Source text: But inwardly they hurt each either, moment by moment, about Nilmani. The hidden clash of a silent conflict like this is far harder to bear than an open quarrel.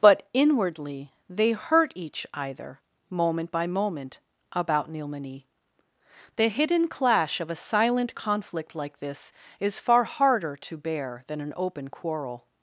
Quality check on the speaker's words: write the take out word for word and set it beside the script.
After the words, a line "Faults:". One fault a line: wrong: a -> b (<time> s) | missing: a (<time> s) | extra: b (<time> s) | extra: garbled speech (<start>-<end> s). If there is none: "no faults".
But inwardly they hurt each either, moment by moment, about Nilmani. The hidden clash of a silent conflict like this is far harder to bear than an open quarrel.
Faults:
no faults